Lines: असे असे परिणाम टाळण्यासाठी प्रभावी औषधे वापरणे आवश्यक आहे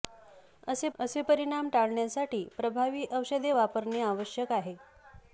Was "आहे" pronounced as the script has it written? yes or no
yes